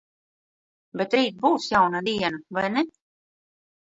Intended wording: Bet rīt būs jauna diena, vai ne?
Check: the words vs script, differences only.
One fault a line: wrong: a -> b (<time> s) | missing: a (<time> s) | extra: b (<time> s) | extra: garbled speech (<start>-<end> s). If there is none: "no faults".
no faults